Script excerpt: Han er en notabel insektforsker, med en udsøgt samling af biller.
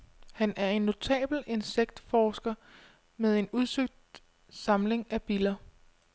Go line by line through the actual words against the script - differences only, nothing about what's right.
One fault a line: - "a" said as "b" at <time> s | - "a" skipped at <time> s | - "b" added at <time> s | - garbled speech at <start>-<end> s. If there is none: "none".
none